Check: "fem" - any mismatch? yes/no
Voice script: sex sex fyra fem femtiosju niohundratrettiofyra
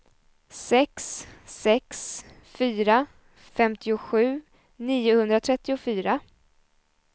yes